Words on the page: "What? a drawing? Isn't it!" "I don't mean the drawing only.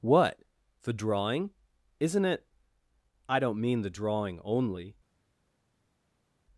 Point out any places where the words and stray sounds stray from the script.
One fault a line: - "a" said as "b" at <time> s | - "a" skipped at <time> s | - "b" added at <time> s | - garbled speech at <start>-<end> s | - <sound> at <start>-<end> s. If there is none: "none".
- "a" said as "the" at 0.8 s